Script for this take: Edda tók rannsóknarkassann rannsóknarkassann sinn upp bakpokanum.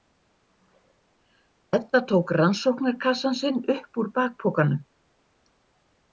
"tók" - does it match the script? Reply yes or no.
yes